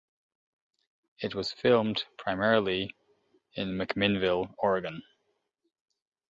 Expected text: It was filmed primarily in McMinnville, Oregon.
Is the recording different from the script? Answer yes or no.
no